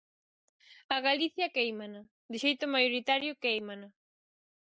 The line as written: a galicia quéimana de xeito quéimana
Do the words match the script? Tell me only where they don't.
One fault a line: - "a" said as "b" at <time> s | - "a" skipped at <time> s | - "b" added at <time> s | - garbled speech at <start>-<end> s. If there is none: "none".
- "maioritario" added at 2.7 s